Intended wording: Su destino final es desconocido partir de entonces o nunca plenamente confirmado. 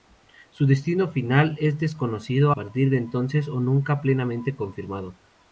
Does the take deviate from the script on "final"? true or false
false